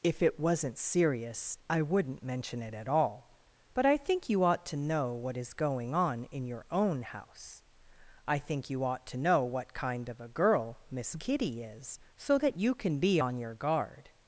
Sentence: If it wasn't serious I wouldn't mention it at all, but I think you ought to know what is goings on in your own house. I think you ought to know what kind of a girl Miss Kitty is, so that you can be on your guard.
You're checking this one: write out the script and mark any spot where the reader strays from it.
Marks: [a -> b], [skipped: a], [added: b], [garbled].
If it wasn't serious I wouldn't mention it at all, but I think you ought to know what is [goings -> going] on in your own house. I think you ought to know what kind of a girl Miss Kitty is, so that you can be on your guard.